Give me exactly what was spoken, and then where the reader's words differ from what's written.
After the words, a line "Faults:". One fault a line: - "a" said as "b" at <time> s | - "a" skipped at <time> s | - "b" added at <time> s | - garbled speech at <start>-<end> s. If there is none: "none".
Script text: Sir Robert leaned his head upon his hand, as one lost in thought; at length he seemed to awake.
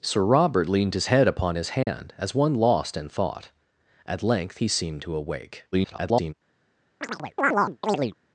Sir Robert leaned his head upon his hand, as one lost in thought; at length he seemed to awake. [garbled]
Faults:
- garbled speech at 5.7-6.3 s